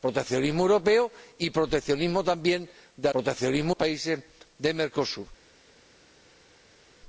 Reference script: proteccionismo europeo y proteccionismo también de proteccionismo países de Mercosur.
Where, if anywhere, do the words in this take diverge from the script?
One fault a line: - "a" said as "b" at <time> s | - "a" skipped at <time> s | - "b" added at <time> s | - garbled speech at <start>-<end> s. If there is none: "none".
none